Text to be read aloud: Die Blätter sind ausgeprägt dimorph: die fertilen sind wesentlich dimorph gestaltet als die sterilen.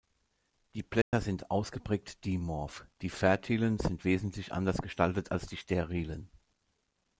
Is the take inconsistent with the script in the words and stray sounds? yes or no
yes